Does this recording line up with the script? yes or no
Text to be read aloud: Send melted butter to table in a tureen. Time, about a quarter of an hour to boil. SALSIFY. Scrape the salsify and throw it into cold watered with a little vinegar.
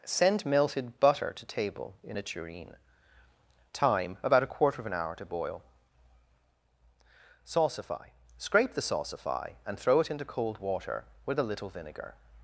no